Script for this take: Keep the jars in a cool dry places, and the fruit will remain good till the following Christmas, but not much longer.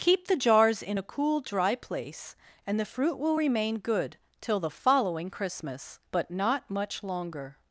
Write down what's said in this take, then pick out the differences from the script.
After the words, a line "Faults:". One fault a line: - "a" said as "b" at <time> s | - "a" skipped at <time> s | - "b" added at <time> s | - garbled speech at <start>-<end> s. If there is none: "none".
Keep the jars in a cool dry place, and the fruit will remain good till the following Christmas, but not much longer.
Faults:
- "places" said as "place" at 1.8 s